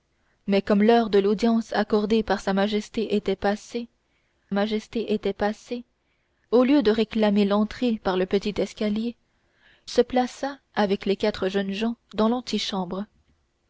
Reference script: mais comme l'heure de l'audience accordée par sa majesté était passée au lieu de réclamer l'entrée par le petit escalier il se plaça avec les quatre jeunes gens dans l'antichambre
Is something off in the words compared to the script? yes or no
yes